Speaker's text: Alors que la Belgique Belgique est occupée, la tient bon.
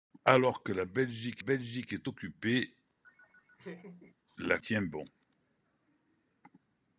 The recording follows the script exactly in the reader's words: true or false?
true